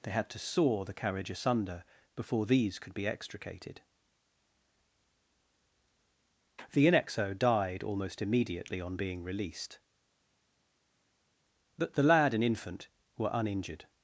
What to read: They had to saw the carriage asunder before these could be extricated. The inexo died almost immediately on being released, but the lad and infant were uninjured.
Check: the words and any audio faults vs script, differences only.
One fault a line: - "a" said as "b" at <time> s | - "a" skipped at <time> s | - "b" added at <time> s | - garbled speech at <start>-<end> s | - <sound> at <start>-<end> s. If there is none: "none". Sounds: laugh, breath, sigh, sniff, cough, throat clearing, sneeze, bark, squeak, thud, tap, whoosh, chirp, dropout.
none